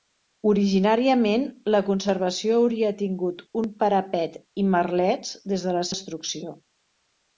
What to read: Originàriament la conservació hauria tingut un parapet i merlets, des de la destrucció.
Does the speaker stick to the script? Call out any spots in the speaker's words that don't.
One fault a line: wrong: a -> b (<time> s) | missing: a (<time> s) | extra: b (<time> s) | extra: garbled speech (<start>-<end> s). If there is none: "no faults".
no faults